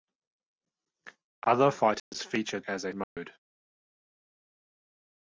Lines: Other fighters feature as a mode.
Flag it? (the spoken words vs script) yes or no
no